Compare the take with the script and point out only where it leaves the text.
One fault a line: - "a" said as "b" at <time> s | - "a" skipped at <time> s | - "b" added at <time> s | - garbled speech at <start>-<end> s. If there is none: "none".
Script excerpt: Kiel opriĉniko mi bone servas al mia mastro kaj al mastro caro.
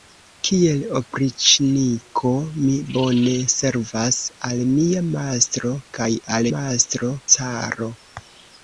none